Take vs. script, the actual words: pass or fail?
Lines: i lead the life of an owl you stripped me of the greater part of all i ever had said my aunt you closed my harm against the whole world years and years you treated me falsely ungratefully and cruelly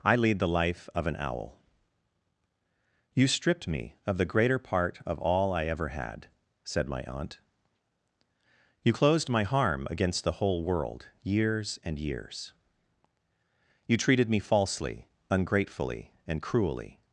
pass